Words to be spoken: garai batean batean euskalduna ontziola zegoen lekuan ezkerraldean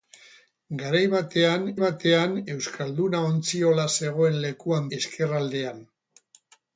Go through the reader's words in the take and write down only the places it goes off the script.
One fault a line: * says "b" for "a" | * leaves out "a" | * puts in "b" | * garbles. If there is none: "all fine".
all fine